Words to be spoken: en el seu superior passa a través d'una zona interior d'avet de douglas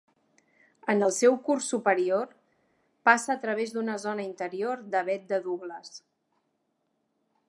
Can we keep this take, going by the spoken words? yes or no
no